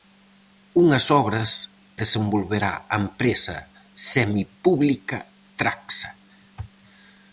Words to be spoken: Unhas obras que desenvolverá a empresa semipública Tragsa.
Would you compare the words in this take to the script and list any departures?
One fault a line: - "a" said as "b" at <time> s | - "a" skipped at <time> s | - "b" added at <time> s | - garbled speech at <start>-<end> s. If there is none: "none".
- "que" skipped at 1.5 s